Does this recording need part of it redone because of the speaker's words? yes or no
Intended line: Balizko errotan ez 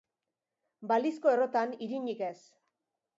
yes